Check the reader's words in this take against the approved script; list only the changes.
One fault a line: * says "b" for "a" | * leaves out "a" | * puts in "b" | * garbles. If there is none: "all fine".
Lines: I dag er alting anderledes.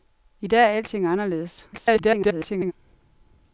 * garbles